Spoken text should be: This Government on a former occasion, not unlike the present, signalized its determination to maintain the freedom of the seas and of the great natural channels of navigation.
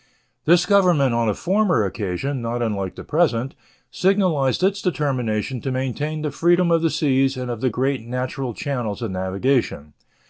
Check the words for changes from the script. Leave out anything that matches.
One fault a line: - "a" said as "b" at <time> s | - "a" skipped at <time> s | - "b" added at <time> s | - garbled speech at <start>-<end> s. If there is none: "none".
none